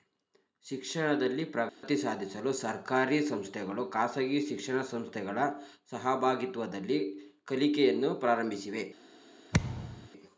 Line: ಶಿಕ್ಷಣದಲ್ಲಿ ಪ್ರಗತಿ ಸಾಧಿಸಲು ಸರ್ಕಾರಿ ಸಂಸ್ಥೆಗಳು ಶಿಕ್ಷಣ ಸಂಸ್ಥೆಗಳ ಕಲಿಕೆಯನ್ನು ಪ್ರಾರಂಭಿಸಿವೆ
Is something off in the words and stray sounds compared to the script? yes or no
yes